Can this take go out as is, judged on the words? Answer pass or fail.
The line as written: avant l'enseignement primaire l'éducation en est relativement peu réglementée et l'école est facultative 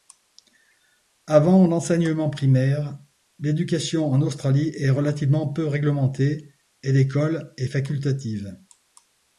fail